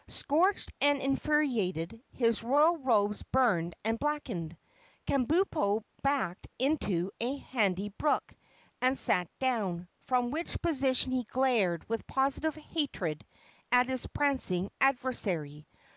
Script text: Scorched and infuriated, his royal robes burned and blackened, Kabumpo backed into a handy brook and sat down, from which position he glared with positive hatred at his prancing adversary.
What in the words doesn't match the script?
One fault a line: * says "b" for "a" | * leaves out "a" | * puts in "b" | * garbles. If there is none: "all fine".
all fine